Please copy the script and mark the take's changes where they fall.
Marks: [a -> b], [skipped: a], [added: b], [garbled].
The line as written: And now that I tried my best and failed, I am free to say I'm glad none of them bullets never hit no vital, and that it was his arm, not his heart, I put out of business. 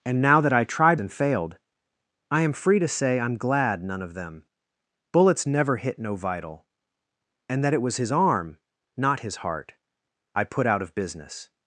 And now that I tried [skipped: my best] and failed, I am free to say I'm glad none of them bullets never hit no vital, and that it was his arm, not his heart, I put out of business.